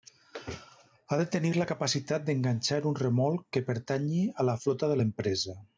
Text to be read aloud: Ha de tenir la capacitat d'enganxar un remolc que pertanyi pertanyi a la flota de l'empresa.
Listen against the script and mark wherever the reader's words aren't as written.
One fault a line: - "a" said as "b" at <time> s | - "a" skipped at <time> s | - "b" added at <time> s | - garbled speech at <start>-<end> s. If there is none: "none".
- "pertanyi" skipped at 4.2 s